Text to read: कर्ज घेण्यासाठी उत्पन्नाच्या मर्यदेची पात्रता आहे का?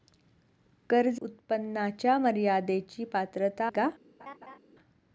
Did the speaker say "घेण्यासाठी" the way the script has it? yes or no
no